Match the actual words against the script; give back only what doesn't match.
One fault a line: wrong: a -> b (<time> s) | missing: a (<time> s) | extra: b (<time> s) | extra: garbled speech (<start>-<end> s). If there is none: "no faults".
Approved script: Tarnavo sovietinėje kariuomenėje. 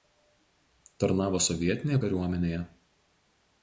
no faults